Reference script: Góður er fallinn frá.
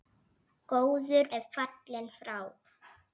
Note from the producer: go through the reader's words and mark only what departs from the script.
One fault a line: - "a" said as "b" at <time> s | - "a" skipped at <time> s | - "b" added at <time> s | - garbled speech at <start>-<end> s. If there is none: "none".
none